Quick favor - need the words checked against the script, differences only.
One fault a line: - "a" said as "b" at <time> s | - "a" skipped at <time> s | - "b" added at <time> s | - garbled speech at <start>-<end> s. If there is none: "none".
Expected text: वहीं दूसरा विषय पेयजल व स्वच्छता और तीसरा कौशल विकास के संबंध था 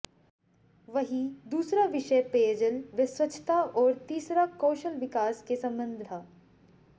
none